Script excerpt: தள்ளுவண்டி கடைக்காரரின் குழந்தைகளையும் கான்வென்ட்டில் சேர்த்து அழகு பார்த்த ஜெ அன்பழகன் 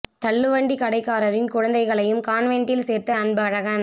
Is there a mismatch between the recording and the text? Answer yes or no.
yes